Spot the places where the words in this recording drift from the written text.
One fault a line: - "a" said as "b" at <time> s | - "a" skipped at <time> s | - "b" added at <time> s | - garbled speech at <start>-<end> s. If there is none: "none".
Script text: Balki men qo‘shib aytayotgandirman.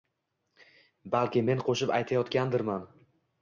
none